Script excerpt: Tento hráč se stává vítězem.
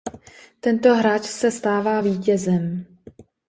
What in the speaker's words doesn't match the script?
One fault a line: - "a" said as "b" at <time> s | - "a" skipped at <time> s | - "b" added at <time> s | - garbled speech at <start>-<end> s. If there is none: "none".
none